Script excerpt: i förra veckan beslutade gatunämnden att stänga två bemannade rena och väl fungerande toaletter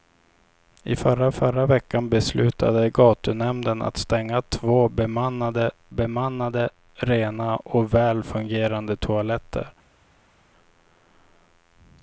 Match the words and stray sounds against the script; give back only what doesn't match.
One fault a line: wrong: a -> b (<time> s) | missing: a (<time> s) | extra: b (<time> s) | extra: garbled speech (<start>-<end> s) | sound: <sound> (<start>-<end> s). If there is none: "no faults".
extra: förra (1.3 s)
extra: bemannade (5.9 s)